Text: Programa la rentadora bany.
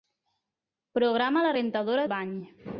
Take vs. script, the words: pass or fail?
pass